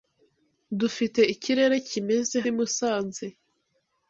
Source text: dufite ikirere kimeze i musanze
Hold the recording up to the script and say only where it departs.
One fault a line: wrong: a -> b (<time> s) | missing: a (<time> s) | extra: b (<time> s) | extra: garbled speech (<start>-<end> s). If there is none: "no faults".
no faults